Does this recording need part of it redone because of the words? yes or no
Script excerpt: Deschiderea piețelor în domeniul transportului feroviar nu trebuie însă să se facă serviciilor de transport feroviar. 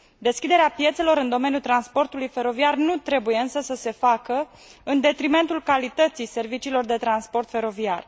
yes